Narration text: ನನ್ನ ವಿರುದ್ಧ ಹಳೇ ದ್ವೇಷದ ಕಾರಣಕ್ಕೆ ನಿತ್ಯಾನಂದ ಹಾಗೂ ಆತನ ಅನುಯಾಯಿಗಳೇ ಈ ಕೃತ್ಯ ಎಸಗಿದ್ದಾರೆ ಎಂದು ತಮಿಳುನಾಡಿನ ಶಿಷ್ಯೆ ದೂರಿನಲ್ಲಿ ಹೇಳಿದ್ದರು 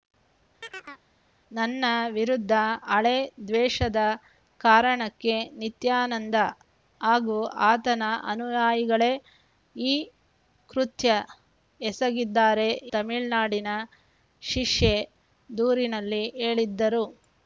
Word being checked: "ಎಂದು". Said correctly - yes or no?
no